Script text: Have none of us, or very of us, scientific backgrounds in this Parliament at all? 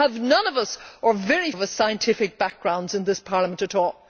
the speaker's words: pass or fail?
pass